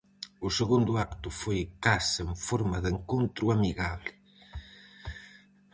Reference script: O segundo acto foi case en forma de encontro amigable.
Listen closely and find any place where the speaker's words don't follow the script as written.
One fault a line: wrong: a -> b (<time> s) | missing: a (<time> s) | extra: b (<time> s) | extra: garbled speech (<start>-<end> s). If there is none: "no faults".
no faults